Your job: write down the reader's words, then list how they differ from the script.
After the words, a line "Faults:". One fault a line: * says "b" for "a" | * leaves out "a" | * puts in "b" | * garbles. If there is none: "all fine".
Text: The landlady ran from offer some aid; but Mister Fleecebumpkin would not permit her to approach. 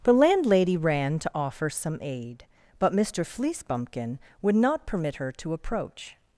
The landlady ran to offer some aid; but Mister Fleecebumpkin would not permit her to approach.
Faults:
* says "to" for "from"